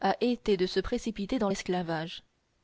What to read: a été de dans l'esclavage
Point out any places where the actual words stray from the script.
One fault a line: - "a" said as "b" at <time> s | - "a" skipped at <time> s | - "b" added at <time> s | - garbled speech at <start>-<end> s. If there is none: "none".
- "se précipiter" added at 0.7 s